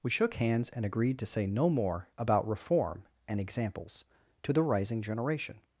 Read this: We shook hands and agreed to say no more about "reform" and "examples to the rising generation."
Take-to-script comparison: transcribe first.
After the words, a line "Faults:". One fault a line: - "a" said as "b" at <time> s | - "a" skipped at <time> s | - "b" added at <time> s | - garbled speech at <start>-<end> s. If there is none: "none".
We shook hands and agreed to say no more about "reform" and "examples to the rising generation."
Faults:
none